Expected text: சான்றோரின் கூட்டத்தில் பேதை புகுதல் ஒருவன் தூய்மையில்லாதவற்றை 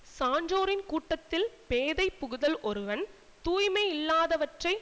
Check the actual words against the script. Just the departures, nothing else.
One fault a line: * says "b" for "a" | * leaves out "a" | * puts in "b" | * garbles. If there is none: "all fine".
all fine